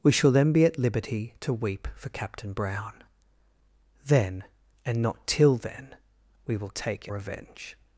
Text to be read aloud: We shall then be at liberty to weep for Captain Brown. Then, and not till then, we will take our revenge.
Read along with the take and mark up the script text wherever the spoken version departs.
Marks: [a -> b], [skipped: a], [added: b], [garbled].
We shall then be at liberty to weep for Captain Brown. Then, and not till then, we will take [skipped: our] revenge.